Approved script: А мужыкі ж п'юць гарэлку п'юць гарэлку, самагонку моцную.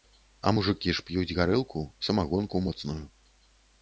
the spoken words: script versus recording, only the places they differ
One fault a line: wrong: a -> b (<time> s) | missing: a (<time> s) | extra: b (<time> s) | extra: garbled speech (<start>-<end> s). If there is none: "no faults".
missing: п'юць гарэлку (1.8 s)